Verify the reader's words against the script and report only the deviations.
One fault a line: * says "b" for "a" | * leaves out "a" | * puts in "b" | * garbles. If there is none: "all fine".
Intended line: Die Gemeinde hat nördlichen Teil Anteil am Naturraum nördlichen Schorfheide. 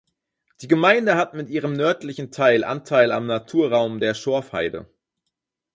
* puts in "mit ihrem"
* says "der" for "nördlichen"